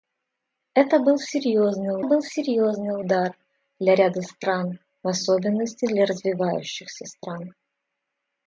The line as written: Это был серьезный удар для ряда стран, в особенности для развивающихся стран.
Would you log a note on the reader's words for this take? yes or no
yes